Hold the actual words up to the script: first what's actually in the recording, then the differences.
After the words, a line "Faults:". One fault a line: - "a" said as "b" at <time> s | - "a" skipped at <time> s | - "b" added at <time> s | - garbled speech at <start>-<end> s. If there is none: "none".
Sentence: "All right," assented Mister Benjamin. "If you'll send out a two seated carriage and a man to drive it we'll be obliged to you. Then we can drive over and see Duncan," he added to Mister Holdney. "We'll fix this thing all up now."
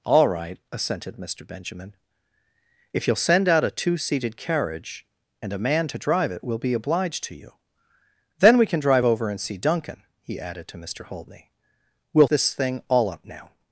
"All right," assented Mister Benjamin. "If you'll send out a two seated carriage and a man to drive it we'll be obliged to you. Then we can drive over and see Duncan," he added to Mister Holdney. "We'll this thing all up now."
Faults:
- "fix" skipped at 12.3 s